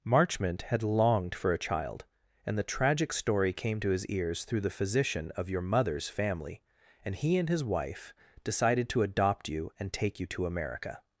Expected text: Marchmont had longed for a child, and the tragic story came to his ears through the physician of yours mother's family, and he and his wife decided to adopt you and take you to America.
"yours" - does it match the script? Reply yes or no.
no